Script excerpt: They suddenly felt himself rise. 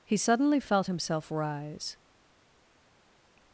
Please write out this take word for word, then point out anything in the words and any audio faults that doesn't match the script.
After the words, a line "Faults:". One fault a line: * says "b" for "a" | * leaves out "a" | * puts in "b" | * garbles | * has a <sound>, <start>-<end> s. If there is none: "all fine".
He suddenly felt himself rise.
Faults:
* says "He" for "They"